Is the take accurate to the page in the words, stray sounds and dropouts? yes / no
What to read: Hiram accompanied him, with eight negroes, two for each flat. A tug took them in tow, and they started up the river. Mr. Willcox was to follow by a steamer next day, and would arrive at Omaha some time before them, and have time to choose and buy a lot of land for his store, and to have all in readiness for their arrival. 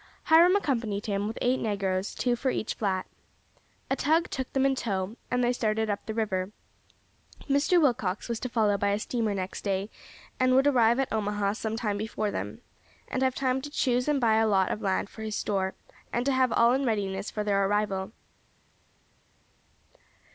yes